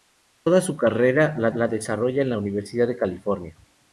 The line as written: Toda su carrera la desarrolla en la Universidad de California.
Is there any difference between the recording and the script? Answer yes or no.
yes